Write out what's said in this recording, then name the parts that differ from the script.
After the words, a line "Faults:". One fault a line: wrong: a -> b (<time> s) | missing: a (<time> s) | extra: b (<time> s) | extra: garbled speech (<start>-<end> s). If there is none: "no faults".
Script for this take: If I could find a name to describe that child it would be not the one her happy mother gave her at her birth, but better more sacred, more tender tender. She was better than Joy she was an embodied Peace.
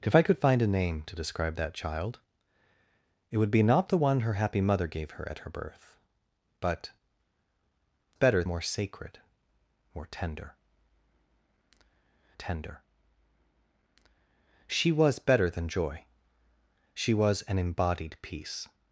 If I could find a name to describe that child it would be not the one her happy mother gave her at her birth, but better more sacred, more tender tender. She was better than Joy she was an embodied Peace.
Faults:
no faults